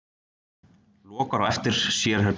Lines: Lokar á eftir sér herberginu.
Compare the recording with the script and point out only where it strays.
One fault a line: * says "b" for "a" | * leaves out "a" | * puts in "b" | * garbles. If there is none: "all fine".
all fine